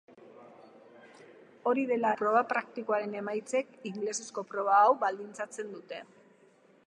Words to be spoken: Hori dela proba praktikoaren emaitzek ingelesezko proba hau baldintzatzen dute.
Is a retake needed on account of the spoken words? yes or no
no